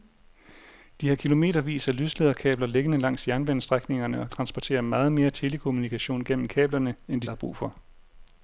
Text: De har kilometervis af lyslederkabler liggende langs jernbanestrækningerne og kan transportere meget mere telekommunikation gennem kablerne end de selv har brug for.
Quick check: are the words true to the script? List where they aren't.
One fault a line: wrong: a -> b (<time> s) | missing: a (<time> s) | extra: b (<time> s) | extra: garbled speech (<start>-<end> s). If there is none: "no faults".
missing: kan (4.3 s)
missing: selv (7.3 s)